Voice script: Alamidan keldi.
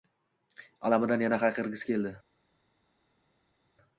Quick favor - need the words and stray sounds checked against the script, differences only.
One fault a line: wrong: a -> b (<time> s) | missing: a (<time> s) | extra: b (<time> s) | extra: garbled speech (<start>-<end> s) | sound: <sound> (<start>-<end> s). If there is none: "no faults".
extra: yana hayqirgisi (1.2 s)